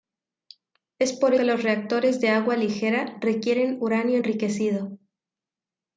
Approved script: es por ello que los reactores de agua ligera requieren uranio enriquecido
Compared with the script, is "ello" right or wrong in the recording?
wrong